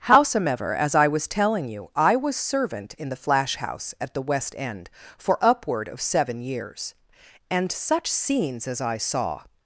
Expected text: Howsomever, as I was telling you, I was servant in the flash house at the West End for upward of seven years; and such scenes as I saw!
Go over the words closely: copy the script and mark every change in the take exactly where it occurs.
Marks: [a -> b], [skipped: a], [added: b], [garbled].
Howsomever, as I was telling you, I was servant in the flash house at the West End for upward of seven years; and such scenes as I saw!